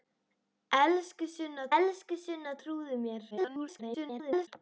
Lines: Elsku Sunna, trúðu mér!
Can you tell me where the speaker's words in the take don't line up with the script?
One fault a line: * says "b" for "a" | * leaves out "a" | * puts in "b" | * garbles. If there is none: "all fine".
* puts in "elsku Sunna"
* garbles